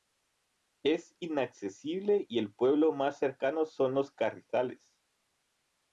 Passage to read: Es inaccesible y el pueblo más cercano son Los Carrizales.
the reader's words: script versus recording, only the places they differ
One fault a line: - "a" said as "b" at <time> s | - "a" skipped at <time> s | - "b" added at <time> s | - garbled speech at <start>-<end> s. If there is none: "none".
none